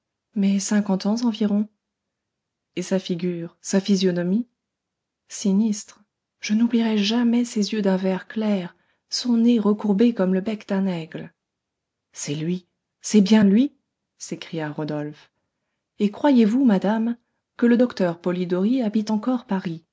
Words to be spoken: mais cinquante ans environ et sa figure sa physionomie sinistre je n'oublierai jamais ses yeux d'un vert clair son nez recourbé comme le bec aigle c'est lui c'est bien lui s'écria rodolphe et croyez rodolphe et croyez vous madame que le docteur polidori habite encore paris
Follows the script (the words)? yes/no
no